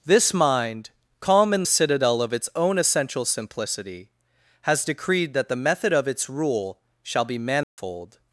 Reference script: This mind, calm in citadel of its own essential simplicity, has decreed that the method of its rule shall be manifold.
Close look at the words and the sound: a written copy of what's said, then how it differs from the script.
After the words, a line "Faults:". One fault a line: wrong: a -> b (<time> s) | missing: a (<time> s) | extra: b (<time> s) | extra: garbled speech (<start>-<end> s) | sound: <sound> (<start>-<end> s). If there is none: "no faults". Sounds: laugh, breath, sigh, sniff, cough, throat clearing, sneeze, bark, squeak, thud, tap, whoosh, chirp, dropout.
This mind, calm in citadel of its own essential simplicity, has decreed that the method of its rule shall be manifold.
Faults:
sound: dropout (7.6-7.8 s)